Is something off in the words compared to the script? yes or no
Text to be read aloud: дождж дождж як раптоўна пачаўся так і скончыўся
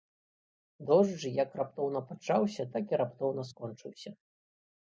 yes